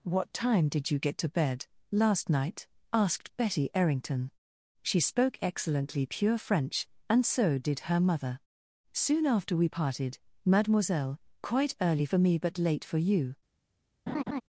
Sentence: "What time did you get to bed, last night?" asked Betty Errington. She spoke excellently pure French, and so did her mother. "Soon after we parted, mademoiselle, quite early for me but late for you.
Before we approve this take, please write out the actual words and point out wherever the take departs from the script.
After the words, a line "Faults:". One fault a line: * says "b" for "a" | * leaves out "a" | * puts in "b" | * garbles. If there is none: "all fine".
"What time did you get to bed, last night?" asked Betty Errington. She spoke excellently pure French, and so did her mother. "Soon after we parted, mademoiselle, quite early for me but late for you.
Faults:
all fine